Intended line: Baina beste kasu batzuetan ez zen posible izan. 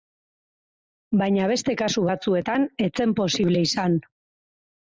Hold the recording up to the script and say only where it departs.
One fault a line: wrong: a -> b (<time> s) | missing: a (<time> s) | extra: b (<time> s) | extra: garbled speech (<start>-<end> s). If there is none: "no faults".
no faults